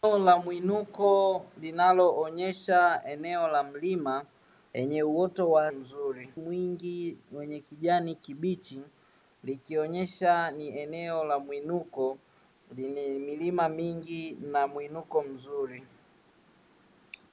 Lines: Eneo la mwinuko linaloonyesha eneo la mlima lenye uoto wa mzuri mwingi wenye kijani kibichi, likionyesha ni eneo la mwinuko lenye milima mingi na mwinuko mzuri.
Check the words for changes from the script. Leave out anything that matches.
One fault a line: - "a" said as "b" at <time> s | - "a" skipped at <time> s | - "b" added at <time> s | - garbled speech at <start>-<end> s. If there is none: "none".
none